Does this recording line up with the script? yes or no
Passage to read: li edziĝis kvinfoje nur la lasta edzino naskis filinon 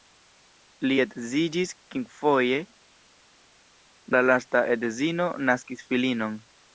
no